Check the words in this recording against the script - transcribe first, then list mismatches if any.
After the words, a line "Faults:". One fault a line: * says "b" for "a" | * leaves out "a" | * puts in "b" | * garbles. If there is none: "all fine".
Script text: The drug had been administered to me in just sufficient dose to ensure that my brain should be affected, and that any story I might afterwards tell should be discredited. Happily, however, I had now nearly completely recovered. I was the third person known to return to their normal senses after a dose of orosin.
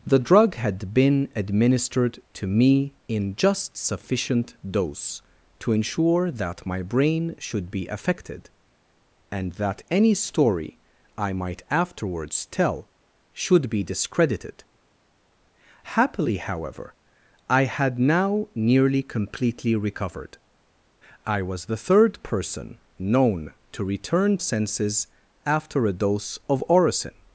The drug had been administered to me in just sufficient dose to ensure that my brain should be affected, and that any story I might afterwards tell should be discredited. Happily, however, I had now nearly completely recovered. I was the third person known to return senses after a dose of orosin.
Faults:
* leaves out "to their normal"